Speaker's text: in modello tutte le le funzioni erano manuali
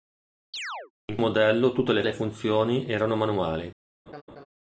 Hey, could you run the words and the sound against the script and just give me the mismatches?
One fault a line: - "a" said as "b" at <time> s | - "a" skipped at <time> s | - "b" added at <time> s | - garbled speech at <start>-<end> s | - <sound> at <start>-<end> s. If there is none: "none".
- chirp at 0.5-0.9 s
- laugh at 4.1-4.5 s